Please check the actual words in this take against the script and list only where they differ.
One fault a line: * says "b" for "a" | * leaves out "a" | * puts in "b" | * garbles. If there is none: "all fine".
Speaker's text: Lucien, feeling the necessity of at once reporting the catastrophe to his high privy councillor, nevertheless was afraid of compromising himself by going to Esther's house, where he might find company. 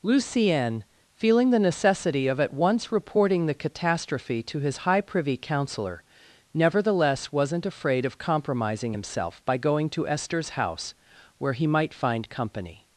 * says "wasn't" for "was"